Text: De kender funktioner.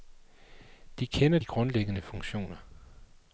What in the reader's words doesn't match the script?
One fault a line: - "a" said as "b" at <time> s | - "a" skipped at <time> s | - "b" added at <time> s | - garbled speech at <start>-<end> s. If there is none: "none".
- "de grundlæggende" added at 1.3 s